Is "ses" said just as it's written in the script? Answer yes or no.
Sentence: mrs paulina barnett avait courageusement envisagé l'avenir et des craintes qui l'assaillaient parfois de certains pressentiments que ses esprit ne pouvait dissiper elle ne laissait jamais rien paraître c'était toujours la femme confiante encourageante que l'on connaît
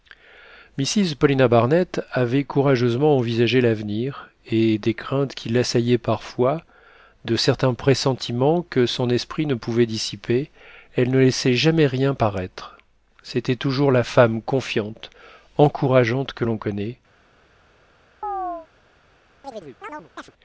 no